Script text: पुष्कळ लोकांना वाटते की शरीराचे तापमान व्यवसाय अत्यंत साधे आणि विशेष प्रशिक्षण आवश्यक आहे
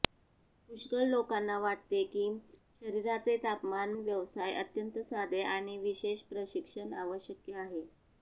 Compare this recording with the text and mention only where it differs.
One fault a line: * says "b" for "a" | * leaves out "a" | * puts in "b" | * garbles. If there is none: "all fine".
all fine